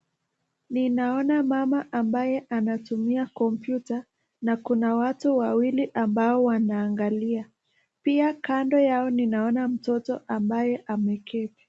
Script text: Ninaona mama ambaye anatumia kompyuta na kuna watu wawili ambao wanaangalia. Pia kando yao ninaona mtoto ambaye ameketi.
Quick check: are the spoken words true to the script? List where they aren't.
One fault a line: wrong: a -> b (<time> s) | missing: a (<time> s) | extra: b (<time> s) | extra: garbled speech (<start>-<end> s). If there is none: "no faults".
no faults